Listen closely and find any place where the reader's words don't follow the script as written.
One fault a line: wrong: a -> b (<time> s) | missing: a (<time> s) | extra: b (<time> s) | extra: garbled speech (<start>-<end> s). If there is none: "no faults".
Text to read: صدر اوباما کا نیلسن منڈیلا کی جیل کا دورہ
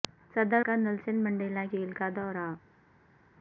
missing: اوباما (0.6 s)
missing: کی (1.6 s)